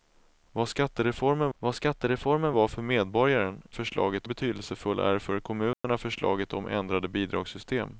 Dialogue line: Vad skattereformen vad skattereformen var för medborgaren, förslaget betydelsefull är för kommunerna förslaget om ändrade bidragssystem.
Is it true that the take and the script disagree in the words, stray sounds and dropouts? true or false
true